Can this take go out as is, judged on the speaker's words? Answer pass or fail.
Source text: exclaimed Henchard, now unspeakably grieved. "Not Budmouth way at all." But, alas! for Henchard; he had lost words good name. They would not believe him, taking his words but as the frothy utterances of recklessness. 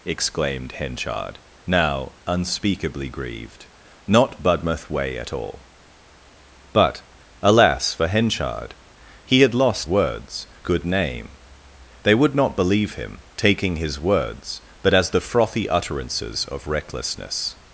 pass